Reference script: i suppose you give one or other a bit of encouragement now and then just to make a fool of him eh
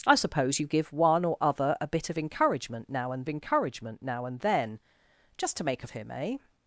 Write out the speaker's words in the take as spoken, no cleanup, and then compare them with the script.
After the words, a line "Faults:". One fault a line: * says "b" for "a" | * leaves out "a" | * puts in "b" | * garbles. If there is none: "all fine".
i suppose you give one or other a bit of encouragement now and encouragement now and then just to make a of him eh
Faults:
* puts in "encouragement now and"
* leaves out "fool"